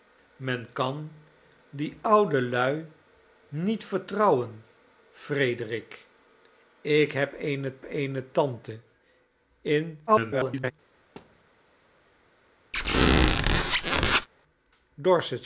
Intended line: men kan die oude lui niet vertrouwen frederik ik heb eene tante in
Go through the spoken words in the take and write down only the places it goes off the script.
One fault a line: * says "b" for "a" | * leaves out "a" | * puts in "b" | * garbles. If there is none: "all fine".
* puts in "eene"
* garbles